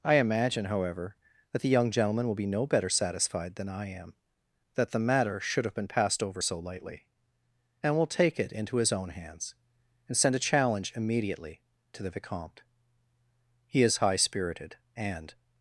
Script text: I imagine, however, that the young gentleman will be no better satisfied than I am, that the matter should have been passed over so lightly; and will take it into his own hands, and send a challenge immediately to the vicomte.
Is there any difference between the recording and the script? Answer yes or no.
yes